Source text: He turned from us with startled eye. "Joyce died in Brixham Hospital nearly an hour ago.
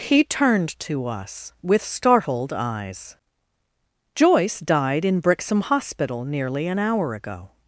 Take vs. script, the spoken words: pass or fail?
fail